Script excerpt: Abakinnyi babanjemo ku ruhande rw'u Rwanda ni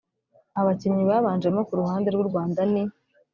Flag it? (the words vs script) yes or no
no